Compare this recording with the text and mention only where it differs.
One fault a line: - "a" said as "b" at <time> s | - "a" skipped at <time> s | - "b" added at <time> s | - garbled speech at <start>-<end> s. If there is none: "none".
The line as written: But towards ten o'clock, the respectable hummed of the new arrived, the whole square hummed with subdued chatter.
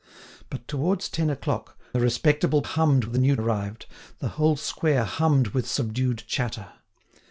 none